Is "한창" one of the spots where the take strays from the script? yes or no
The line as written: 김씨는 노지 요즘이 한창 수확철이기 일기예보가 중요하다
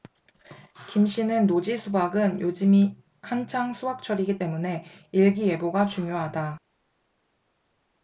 no